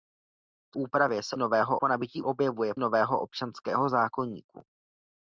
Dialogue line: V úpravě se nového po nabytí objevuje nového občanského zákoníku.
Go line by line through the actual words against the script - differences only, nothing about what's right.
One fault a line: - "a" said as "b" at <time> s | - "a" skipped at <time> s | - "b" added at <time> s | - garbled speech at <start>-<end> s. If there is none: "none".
none